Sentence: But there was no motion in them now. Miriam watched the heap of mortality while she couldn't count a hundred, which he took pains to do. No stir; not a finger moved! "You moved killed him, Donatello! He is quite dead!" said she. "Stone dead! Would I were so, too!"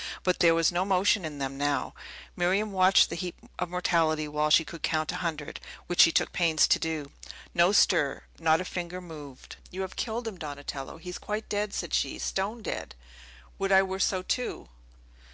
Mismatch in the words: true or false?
true